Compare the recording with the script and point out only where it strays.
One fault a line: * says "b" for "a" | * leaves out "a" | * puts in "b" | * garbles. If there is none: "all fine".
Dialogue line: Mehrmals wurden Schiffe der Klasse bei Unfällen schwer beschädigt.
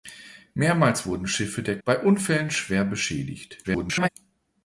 * leaves out "Klasse"
* garbles